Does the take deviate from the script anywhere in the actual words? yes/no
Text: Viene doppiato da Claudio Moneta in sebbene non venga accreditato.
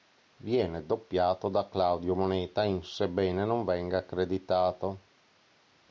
no